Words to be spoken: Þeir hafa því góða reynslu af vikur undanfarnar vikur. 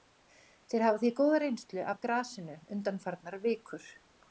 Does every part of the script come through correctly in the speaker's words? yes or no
no